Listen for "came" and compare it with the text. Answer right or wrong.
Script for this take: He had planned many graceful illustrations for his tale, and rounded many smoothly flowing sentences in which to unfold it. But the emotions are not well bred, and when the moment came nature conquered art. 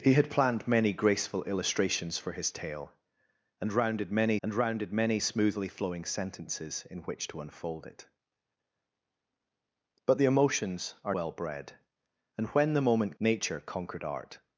wrong